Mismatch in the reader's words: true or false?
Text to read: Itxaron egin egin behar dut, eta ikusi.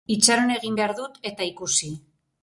true